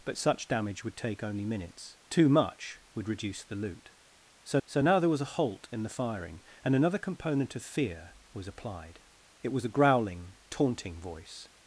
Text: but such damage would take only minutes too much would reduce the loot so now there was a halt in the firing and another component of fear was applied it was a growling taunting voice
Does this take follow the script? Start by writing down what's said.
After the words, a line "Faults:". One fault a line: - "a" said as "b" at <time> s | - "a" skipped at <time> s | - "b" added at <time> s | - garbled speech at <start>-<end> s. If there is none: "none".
but such damage would take only minutes too much would reduce the loot so so now there was a halt in the firing and another component of fear was applied it was a growling taunting voice
Faults:
- "so" added at 4.6 s